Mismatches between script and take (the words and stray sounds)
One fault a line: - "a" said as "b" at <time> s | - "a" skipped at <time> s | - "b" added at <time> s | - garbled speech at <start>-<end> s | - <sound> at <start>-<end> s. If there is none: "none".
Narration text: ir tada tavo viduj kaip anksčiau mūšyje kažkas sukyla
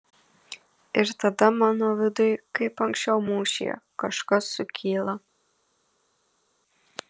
- "tavo" said as "mano" at 1.6 s